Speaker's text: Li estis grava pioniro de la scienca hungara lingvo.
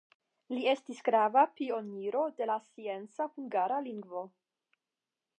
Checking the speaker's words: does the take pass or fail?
pass